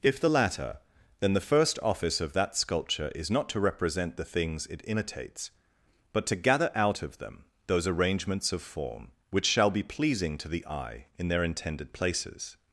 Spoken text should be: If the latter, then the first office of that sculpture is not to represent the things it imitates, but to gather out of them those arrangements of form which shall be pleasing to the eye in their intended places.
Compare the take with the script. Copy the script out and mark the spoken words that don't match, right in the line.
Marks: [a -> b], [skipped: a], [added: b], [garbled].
If the latter, then the first office of that sculpture is not to represent the things it imitates, but to gather out of them those arrangements of form which shall be pleasing to the eye in their intended places.